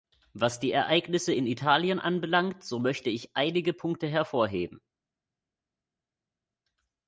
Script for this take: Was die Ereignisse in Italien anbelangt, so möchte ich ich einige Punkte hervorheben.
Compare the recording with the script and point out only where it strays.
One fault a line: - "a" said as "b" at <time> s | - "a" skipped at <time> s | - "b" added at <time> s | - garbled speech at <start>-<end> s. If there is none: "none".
- "ich" skipped at 3.3 s